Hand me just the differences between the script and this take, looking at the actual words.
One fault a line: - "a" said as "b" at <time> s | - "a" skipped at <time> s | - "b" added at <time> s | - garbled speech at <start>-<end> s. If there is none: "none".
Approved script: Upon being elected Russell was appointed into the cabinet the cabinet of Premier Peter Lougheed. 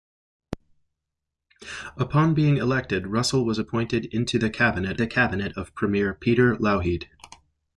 none